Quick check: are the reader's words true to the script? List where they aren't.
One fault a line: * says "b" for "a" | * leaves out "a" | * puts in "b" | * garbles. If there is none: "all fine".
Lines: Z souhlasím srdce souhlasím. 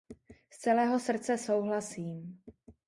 * says "celého" for "souhlasím"